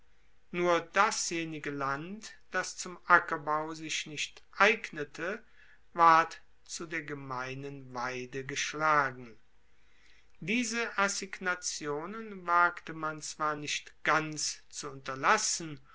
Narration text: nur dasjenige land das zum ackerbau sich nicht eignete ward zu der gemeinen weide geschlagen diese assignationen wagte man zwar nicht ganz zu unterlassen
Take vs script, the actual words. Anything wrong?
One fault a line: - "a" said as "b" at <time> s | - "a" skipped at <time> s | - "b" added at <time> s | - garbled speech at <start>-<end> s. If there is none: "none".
none